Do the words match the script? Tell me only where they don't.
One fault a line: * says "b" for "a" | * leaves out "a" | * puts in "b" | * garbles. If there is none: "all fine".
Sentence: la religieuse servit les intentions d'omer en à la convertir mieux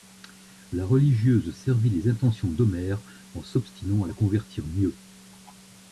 * puts in "s'obstinant"